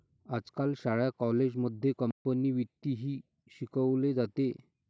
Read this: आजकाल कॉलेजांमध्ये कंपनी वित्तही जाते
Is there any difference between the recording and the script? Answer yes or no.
yes